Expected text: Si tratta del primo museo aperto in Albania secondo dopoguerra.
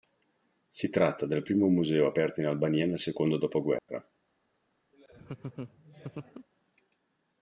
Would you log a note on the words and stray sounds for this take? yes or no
yes